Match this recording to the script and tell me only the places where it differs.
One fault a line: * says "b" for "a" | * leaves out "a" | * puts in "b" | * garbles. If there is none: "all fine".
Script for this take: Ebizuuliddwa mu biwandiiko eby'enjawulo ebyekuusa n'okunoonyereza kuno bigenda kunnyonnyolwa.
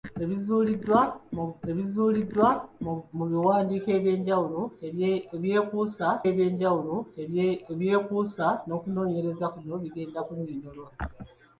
* puts in "ebizuuliddwa"
* puts in "eby'enjawulo ebyekuusa"